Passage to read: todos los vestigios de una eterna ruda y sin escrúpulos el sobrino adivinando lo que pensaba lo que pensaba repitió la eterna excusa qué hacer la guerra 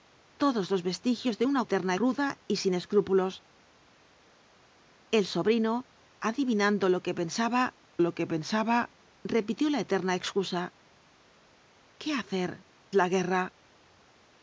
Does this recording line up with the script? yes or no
yes